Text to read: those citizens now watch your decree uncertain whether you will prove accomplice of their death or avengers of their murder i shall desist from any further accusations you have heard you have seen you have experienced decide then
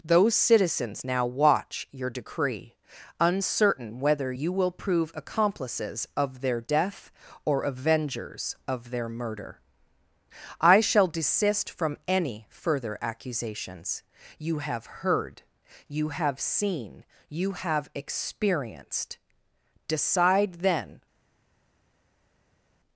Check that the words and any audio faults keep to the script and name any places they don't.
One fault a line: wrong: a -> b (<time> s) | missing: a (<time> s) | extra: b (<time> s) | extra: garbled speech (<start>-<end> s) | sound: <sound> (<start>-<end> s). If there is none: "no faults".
wrong: accomplice -> accomplices (5.1 s)